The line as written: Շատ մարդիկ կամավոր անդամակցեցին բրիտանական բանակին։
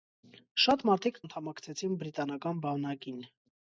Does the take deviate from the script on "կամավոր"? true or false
true